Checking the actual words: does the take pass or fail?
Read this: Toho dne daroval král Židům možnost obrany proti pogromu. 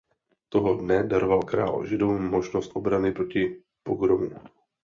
pass